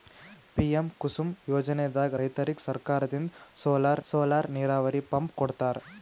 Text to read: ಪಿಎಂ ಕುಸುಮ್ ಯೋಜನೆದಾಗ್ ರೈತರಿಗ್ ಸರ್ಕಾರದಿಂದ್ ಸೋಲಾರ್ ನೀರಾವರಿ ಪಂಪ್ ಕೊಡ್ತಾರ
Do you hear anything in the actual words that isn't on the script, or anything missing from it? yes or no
yes